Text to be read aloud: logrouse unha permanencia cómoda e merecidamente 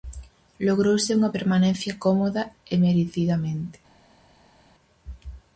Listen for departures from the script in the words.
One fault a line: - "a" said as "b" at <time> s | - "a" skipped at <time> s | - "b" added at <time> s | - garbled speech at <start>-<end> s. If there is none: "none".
none